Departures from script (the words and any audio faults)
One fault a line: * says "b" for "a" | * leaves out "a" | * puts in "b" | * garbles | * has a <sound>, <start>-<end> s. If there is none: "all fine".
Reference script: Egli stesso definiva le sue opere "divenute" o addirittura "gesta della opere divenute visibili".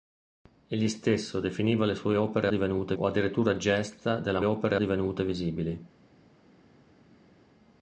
all fine